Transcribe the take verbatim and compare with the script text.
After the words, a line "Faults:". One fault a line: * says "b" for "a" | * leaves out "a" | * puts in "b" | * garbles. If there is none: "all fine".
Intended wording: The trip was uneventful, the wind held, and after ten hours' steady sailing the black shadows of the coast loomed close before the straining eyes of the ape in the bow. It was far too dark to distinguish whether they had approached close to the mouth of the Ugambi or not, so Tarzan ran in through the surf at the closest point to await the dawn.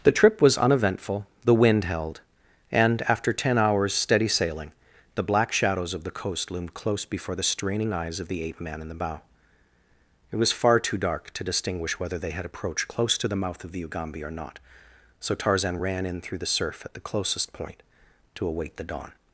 The trip was uneventful, the wind held, and after ten hours' steady sailing the black shadows of the coast loomed close before the straining eyes of the ape man in the bow. It was far too dark to distinguish whether they had approached close to the mouth of the Ugambi or not, so Tarzan ran in through the surf at the closest point to await the dawn.
Faults:
* puts in "man"